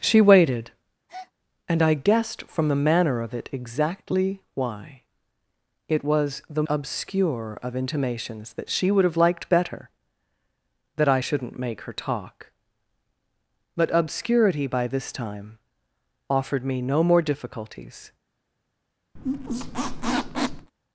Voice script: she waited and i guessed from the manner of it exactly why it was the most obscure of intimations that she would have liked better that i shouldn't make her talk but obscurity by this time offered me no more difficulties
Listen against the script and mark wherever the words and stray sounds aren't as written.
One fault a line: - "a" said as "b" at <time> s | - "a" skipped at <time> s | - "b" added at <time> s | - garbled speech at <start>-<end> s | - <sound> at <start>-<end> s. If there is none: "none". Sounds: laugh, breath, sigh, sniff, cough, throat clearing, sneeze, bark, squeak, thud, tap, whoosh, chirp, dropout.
- breath at 1.1-1.3 s
- "most" skipped at 6.6 s
- squeak at 19.2-20.7 s